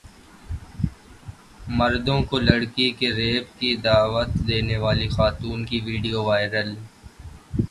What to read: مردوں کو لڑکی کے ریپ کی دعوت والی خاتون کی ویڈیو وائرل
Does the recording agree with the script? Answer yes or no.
no